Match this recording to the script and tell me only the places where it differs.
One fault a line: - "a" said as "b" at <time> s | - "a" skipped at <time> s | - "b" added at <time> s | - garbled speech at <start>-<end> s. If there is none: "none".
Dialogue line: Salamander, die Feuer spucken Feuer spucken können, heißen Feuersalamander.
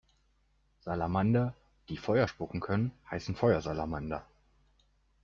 - "Feuer spucken" skipped at 2.6 s